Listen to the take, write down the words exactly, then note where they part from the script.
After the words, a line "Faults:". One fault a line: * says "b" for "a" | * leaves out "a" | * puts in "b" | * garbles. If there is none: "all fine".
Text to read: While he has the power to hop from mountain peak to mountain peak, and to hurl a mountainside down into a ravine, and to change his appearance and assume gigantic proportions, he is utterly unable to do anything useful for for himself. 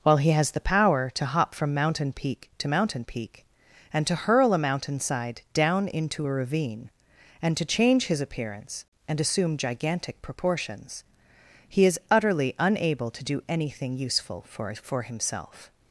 While he has the power to hop from mountain peak to mountain peak, and to hurl a mountainside down into a ravine, and to change his appearance and assume gigantic proportions, he is utterly unable to do anything useful for for himself.
Faults:
all fine